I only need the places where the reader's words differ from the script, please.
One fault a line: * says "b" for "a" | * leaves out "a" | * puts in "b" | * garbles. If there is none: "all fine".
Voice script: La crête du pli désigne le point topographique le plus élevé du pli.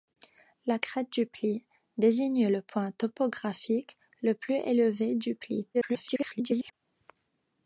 * garbles